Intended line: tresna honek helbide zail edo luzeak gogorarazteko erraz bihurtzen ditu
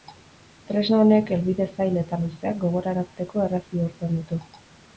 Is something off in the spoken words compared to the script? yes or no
yes